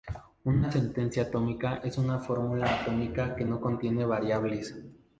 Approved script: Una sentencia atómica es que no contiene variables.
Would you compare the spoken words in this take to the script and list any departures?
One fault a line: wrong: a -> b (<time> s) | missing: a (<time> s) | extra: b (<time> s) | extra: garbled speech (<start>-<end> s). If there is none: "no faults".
extra: una fórmula atómica (2.0 s)